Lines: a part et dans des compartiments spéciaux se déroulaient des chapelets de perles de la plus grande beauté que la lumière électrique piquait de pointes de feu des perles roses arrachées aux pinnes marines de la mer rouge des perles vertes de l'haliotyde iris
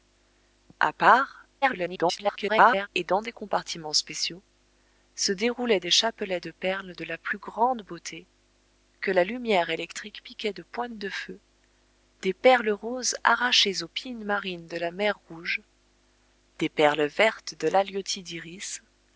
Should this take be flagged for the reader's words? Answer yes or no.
yes